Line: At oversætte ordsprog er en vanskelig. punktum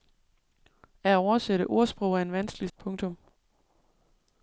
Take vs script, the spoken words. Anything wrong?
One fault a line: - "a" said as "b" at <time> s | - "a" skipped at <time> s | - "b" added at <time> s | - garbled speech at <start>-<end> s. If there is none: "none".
none